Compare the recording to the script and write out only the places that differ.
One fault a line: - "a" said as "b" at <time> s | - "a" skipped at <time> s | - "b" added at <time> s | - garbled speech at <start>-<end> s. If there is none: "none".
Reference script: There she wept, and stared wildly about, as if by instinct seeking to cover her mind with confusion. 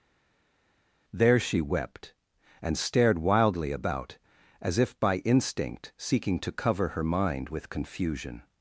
none